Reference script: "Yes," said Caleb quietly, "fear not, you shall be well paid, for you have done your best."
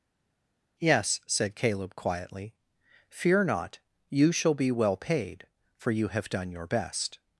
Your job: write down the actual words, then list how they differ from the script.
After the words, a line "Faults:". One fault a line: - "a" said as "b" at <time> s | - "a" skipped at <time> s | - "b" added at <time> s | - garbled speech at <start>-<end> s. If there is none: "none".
"Yes," said Caleb quietly, "fear not, you shall be well paid, for you have done your best."
Faults:
none